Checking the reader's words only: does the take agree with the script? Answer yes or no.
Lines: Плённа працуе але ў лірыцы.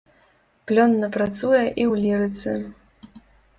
no